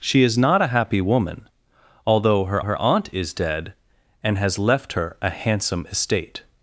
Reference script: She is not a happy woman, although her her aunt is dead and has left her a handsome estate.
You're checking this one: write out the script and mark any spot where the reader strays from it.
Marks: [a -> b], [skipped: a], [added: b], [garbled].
She is not a happy woman, although her her aunt is dead and has left her a handsome estate.